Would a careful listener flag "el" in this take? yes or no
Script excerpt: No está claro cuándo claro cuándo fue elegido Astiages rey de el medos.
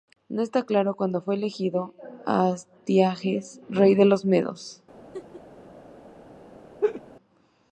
yes